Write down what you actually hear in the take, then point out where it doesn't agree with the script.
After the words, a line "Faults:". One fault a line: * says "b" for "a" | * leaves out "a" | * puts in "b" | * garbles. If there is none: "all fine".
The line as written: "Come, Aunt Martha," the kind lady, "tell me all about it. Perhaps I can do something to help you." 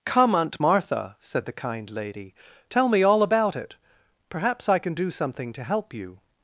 "Come, Aunt Martha," said the kind lady, "tell me all about it. Perhaps I can do something to help you."
Faults:
* puts in "said"